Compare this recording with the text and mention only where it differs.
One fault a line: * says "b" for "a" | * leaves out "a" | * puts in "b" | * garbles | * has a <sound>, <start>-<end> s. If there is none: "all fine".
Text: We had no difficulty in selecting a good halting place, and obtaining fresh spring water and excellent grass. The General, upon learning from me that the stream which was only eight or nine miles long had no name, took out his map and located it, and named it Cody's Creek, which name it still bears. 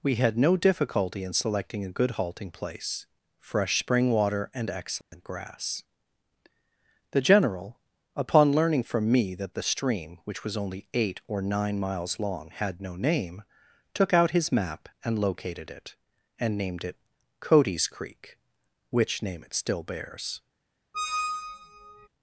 * leaves out "and obtaining"
* has a dropout, 5.0-5.1 s
* has a squeak, 20.9-22.1 s